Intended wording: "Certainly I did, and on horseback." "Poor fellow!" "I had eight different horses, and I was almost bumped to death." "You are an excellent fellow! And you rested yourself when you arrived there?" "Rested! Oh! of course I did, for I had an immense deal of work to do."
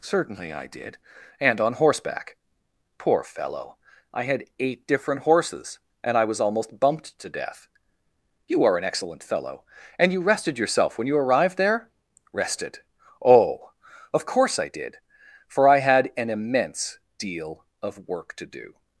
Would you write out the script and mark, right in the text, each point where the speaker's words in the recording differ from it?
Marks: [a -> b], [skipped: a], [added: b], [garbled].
"Certainly I did, and on horseback." "Poor fellow!" "I had eight different horses, and I was almost bumped to death." "You are an excellent fellow! And you rested yourself when you arrived there?" "Rested! Oh! of course I did, for I had an immense deal of work to do."